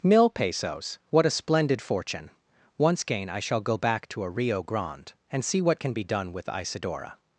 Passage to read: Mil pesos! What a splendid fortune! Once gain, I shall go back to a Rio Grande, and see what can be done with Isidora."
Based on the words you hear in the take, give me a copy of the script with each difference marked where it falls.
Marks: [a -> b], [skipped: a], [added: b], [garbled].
Mil pesos! What a splendid fortune! Once gain, I shall go back to a Rio Grande, and see what can be done with Isidora."